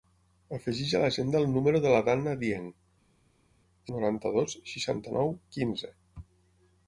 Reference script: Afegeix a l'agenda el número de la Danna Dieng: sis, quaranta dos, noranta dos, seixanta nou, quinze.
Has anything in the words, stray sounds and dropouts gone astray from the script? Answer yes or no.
yes